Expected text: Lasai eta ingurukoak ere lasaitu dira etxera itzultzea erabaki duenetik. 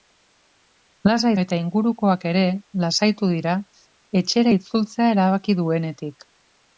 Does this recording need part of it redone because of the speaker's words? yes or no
no